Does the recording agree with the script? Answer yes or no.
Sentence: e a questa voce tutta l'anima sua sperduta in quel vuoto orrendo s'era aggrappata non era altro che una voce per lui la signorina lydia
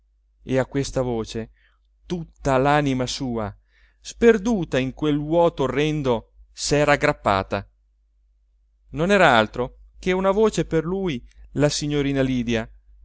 yes